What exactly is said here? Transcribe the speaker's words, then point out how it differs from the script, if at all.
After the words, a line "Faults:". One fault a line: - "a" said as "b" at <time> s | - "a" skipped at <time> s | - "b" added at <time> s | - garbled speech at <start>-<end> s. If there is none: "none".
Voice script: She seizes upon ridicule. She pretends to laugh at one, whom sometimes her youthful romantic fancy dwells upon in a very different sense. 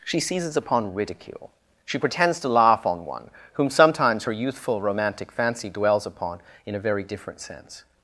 She seizes upon ridicule. She pretends to laugh on one, whom sometimes her youthful romantic fancy dwells upon in a very different sense.
Faults:
- "at" said as "on" at 2.8 s